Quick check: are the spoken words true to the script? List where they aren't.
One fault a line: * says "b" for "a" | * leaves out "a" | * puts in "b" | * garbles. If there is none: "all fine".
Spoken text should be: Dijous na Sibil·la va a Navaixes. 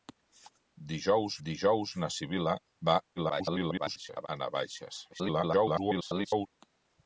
* puts in "dijous"
* garbles
* garbles